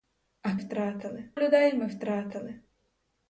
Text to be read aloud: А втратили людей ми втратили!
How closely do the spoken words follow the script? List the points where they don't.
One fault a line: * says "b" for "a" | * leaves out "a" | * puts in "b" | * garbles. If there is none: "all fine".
all fine